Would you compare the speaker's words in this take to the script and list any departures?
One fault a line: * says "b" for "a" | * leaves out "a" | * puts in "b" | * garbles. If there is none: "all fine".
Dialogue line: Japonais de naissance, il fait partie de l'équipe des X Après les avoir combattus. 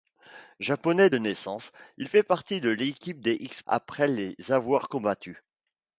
all fine